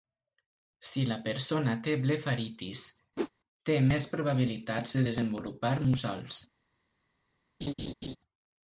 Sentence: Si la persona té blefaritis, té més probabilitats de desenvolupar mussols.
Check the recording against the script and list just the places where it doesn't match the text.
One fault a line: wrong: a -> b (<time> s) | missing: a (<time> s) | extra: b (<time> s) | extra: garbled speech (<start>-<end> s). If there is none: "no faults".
no faults